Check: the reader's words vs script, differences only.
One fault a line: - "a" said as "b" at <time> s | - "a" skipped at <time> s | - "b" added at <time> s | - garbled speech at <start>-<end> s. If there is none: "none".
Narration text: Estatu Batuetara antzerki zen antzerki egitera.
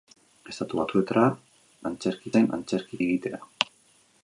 none